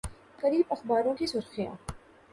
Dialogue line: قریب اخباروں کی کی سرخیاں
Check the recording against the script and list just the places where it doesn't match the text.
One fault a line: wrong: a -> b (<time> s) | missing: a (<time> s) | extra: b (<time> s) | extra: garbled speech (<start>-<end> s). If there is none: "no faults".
missing: کی (1.3 s)